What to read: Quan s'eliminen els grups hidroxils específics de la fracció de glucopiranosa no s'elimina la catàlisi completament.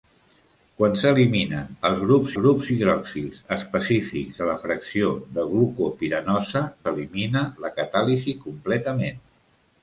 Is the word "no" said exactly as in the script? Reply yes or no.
no